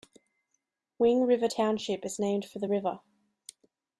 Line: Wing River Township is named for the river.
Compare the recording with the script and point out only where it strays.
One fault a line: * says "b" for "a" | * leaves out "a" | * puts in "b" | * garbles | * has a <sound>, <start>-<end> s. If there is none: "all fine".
all fine